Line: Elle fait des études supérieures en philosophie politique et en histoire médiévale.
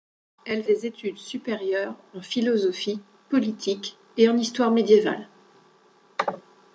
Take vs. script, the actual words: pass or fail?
fail